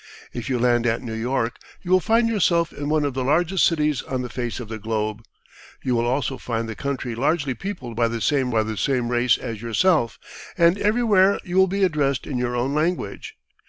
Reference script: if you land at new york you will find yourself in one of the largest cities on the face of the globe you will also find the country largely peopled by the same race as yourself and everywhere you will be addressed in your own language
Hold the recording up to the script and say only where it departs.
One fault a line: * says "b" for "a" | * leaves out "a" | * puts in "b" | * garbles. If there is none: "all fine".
* puts in "by the same"